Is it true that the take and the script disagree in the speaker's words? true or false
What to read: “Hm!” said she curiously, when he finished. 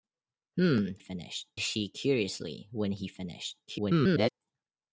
true